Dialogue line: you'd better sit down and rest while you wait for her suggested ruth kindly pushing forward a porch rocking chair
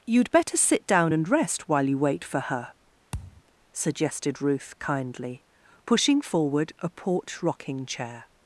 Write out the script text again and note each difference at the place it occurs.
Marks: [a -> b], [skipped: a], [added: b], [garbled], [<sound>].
you'd better sit down and rest while you wait for her [thud] suggested ruth kindly pushing forward a porch rocking chair